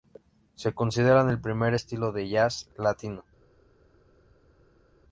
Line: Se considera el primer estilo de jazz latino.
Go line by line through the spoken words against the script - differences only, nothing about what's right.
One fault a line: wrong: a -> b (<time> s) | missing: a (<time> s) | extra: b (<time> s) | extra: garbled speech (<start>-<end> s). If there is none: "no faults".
no faults